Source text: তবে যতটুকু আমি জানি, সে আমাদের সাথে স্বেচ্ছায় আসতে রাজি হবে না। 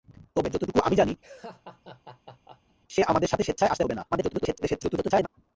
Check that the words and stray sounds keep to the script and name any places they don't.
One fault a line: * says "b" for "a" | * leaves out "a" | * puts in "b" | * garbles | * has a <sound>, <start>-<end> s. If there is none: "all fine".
* has a laugh, 1.2-2.8 s
* leaves out "রাজি"
* garbles